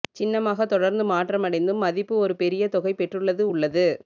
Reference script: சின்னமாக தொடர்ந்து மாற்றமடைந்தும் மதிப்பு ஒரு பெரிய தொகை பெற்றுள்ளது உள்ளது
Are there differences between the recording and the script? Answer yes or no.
no